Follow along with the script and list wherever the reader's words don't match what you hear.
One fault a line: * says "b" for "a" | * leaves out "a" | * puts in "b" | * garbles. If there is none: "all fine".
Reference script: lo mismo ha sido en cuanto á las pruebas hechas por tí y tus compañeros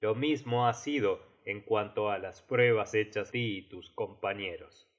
* leaves out "por"